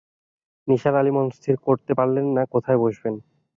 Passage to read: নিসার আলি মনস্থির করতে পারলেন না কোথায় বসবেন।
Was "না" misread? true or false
false